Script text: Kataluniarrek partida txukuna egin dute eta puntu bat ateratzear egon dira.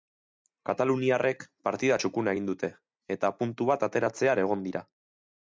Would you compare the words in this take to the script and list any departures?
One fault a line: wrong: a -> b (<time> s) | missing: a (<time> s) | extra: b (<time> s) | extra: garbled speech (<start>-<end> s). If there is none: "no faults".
no faults